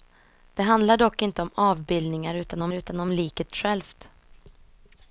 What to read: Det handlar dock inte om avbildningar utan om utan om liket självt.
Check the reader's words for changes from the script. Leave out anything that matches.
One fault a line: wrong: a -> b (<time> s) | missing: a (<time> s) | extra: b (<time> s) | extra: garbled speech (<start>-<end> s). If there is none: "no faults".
no faults